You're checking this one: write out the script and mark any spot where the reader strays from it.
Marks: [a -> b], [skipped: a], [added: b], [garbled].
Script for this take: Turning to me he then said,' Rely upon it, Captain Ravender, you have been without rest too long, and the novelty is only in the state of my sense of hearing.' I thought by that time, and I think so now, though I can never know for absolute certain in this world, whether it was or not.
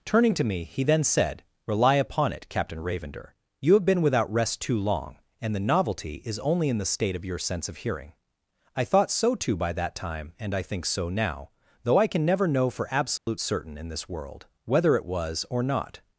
Turning to me he then said,' Rely upon it, Captain Ravender, you have been without rest too long, and the novelty is only in the state of [my -> your] sense of hearing.' I thought [added: so too] by that time, and I think so now, though I can never know for absolute certain in this world, whether it was or not.